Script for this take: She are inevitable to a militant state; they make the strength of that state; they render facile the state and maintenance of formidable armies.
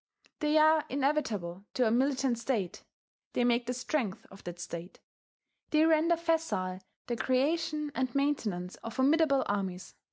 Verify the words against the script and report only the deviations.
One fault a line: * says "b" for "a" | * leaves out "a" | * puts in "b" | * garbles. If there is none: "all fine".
* says "They" for "She"
* says "creation" for "state"